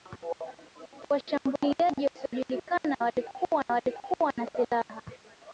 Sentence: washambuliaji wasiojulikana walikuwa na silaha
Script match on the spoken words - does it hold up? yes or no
no